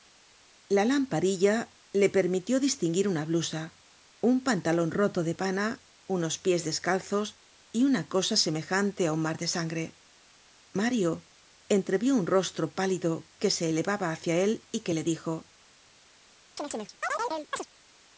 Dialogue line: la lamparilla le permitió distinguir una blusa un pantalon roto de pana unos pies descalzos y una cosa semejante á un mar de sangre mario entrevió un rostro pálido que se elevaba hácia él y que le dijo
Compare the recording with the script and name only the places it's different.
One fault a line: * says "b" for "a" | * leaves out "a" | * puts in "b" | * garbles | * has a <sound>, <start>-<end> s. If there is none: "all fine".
* has a chirp, 16.6-17.7 s